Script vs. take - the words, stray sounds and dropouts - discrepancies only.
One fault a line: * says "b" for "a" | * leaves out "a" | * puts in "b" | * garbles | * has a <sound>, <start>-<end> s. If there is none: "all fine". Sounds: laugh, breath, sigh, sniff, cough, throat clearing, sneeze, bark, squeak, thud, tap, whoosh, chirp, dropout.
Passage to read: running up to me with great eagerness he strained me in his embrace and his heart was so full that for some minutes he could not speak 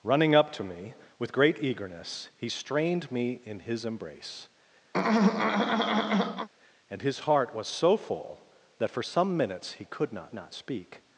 * has a throat clearing, 4.9-6.5 s
* puts in "not"